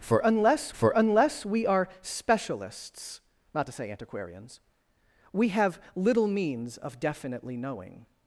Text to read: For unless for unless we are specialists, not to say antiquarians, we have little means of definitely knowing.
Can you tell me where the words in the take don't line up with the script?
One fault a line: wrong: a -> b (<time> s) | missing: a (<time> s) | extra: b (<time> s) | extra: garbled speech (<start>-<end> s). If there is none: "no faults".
no faults